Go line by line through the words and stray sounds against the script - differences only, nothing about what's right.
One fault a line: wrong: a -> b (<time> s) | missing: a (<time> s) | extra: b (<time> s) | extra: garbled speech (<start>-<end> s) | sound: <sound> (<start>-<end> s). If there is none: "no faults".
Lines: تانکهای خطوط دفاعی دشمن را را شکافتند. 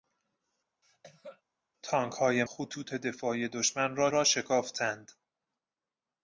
sound: cough (0.8-1.4 s)